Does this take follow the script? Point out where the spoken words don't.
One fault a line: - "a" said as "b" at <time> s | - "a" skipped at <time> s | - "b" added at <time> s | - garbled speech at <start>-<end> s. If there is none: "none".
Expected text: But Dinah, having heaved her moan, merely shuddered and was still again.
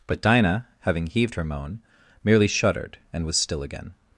none